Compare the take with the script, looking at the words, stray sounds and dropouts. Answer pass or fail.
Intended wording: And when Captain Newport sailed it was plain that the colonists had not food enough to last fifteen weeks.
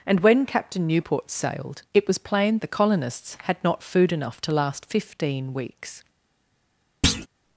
fail